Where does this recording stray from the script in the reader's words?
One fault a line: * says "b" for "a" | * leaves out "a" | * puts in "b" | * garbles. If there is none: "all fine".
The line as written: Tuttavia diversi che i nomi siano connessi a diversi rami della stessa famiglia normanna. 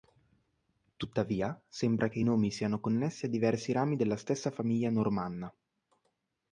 * says "sembra" for "diversi"